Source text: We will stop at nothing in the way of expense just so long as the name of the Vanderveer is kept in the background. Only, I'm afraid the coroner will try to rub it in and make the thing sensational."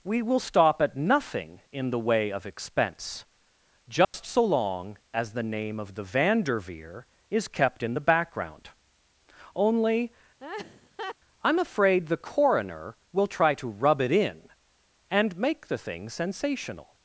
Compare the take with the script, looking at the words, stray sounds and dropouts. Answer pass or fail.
fail